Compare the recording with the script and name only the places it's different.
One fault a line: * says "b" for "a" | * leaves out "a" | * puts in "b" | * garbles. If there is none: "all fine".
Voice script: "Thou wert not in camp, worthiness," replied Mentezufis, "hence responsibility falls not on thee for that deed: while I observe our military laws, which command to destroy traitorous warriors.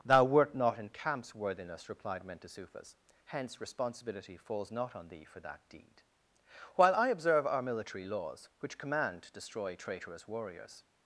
* says "camps" for "camp"